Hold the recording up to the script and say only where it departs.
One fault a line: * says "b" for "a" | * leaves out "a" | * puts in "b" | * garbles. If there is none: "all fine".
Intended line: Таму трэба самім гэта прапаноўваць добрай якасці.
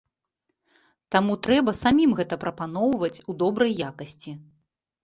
* puts in "у"